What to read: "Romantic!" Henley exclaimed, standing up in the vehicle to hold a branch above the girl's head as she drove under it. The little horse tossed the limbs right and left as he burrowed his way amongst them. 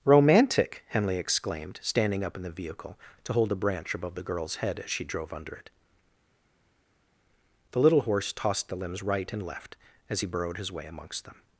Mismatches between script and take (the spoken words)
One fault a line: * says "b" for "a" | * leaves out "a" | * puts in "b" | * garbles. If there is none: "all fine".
all fine